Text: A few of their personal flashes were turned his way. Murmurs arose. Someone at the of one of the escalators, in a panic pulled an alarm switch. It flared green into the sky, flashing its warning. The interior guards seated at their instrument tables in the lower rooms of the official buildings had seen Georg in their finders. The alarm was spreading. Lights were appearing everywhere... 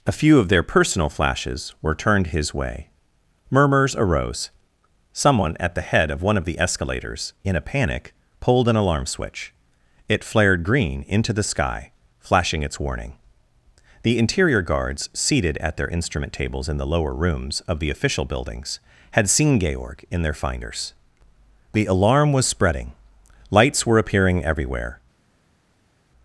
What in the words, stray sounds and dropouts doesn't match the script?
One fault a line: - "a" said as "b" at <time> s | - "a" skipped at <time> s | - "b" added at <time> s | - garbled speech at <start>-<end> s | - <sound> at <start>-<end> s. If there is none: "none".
- "head" added at 5.9 s